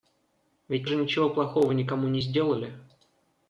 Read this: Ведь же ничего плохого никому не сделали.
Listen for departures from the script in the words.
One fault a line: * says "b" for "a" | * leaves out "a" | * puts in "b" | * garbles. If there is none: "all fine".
all fine